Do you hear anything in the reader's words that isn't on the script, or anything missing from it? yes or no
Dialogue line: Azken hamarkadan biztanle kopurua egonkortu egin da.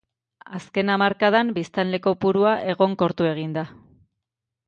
no